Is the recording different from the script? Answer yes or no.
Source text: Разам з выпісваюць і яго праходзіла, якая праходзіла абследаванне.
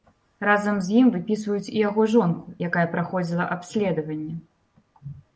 yes